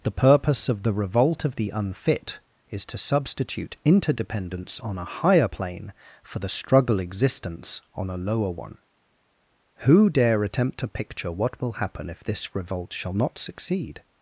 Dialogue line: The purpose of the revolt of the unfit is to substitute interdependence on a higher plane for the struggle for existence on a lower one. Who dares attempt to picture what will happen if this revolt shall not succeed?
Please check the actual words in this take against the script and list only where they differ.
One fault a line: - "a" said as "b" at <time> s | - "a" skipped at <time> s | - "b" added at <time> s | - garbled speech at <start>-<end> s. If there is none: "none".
- "for" skipped at 7.0 s
- "dares" said as "dare" at 10.1 s